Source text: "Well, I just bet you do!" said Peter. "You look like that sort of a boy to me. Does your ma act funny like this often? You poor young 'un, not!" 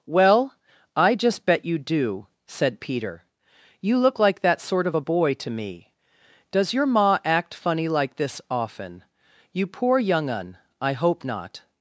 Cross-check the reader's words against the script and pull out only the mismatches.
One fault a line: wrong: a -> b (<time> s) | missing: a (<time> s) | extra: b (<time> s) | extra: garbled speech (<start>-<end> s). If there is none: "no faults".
extra: I hope (10.8 s)